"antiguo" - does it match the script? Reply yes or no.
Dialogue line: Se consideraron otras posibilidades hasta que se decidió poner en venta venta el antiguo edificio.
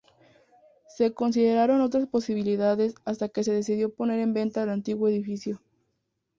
yes